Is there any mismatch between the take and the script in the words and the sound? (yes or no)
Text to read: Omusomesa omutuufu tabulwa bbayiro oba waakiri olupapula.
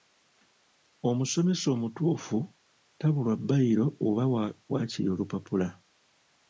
no